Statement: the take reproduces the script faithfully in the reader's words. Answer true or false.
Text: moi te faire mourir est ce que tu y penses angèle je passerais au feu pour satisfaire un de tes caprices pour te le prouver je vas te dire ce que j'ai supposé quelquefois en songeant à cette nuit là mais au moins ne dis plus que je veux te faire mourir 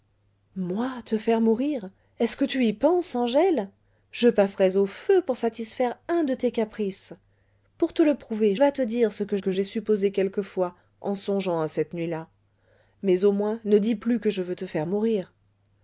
false